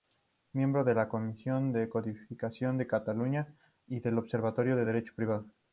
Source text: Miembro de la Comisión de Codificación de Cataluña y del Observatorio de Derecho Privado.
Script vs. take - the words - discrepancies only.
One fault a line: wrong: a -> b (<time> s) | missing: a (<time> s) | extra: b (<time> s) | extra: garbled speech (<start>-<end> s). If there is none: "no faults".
no faults